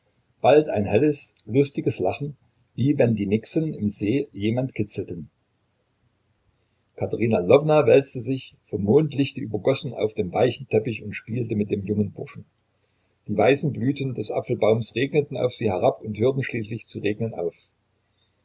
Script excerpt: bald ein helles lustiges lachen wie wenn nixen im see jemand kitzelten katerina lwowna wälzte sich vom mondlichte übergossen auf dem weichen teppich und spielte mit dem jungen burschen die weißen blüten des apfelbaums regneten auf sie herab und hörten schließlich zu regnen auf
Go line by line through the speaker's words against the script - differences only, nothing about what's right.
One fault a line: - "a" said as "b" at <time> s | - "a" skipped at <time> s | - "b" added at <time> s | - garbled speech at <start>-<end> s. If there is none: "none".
- "die" added at 3.1 s